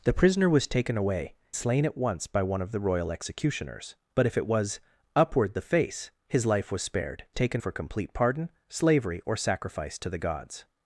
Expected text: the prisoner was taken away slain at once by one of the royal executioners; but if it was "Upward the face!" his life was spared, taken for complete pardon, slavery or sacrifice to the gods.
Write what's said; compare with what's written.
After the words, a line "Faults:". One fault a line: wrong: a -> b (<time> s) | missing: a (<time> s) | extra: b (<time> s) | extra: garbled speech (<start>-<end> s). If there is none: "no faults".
the prisoner was taken away slain at once by one of the royal executioners; but if it was "Upward the face!" his life was spared, taken for complete pardon, slavery or sacrifice to the gods.
Faults:
no faults